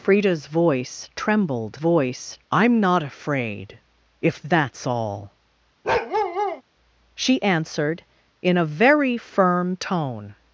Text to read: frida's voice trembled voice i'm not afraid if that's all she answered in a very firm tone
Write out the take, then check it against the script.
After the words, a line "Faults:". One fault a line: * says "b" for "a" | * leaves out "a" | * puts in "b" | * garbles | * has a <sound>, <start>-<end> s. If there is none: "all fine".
frida's voice trembled voice i'm not afraid if that's all she answered in a very firm tone
Faults:
* has a bark, 5.8-6.6 s